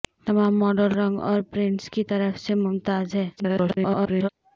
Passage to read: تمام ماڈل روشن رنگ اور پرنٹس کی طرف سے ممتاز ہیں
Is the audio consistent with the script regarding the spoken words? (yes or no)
no